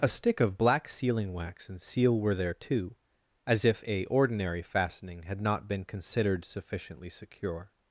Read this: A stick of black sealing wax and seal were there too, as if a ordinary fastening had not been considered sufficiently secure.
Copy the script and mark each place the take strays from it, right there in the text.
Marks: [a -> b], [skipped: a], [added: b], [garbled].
A stick of black sealing wax and seal were there too, as if a ordinary fastening had not been considered sufficiently secure.